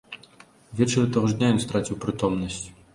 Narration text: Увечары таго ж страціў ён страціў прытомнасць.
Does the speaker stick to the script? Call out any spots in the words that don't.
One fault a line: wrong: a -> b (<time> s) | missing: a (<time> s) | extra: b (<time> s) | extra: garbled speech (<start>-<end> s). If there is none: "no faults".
wrong: страціў -> дня (1.4 s)